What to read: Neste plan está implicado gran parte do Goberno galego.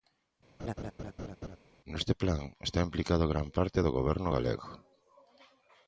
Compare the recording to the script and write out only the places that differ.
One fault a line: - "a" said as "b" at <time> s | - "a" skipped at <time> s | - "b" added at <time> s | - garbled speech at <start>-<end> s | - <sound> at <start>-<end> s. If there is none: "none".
- laugh at 0.6-1.6 s